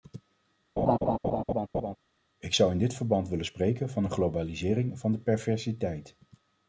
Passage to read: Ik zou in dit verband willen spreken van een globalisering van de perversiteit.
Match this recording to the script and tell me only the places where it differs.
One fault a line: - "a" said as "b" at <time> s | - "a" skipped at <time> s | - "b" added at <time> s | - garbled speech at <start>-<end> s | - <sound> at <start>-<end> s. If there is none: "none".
- laugh at 0.8-2.0 s